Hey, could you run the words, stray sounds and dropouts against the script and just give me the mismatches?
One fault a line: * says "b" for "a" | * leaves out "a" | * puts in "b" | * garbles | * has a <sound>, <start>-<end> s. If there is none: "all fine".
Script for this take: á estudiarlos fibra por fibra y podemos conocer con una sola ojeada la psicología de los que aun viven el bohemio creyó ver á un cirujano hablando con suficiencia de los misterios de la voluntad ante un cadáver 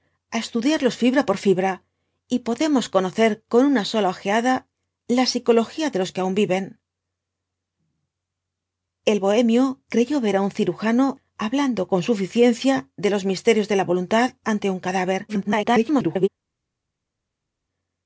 * garbles